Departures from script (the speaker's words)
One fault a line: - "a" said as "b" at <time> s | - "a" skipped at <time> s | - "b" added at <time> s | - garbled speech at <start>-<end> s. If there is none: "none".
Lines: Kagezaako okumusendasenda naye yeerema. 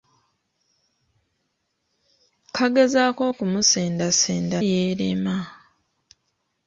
- "naye" skipped at 4.6 s